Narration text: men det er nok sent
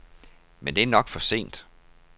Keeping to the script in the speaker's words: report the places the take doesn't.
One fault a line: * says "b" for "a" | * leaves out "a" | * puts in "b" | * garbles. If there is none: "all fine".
* puts in "for"